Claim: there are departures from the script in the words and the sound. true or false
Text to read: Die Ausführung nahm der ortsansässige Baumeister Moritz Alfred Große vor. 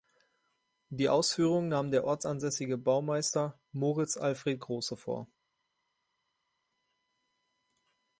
false